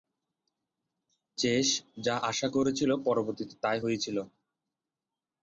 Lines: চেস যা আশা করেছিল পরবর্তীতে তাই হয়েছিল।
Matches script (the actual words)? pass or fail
pass